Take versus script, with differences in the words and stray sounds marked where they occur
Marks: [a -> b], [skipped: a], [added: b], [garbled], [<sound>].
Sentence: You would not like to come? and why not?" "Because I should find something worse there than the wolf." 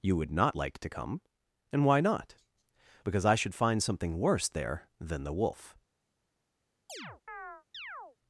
You would not like to come? and why not?" "Because I should find something worse there than the wolf." [chirp]